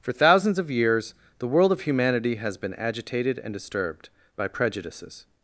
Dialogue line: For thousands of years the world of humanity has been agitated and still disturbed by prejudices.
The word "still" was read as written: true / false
false